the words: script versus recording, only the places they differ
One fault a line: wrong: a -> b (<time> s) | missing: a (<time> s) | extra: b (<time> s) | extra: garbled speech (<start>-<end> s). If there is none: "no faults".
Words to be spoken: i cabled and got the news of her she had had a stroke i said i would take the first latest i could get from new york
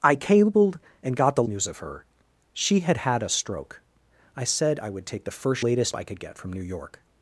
no faults